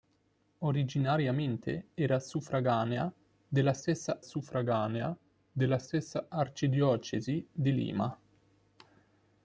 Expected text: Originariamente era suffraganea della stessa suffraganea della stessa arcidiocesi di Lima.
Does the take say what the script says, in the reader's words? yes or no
yes